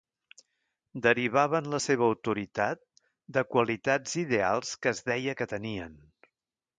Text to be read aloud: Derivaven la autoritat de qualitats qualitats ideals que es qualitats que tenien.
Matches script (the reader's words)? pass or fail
fail